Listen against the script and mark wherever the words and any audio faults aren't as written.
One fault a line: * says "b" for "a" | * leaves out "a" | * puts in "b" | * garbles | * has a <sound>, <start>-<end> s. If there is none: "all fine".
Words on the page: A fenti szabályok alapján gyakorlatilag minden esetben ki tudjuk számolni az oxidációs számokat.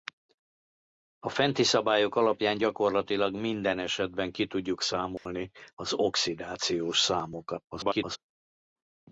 * has a dropout, 5.2-5.3 s
* garbles